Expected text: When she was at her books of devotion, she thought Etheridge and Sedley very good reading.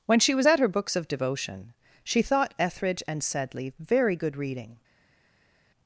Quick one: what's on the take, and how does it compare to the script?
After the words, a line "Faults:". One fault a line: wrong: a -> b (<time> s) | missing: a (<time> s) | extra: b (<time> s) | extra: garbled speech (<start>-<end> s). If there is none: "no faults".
When she was at her books of devotion, she thought Etheridge and Sedley very good reading.
Faults:
no faults